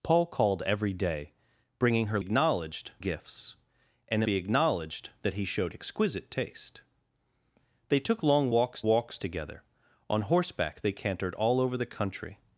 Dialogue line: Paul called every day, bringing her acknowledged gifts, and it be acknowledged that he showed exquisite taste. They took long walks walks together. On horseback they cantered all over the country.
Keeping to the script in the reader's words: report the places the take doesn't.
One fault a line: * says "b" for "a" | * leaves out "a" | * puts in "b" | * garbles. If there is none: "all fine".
all fine